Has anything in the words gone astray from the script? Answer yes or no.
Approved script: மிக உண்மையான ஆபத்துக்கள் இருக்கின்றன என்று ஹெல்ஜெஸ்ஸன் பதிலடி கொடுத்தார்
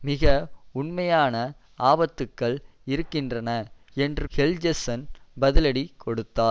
no